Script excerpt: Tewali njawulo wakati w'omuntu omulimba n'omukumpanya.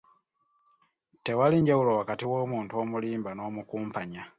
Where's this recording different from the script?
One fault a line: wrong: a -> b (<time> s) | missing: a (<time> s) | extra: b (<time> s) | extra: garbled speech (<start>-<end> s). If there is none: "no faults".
no faults